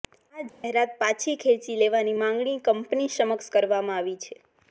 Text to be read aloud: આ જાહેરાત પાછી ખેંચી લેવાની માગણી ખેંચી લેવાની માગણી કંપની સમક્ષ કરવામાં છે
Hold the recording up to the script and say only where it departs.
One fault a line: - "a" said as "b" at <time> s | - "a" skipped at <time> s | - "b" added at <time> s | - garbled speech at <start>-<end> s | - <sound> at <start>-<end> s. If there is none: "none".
- dropout at 0.5-0.6 s
- "ખેંચી લેવાની માગણી" skipped at 2.6 s
- "આવી" added at 4.0 s